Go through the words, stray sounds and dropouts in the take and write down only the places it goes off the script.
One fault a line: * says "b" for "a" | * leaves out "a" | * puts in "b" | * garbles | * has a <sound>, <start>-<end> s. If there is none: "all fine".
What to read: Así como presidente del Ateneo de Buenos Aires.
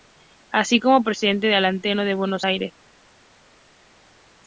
all fine